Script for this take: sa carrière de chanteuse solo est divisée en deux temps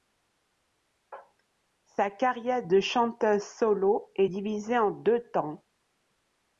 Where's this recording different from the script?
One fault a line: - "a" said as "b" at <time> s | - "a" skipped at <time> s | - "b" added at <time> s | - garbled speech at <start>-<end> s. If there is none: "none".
none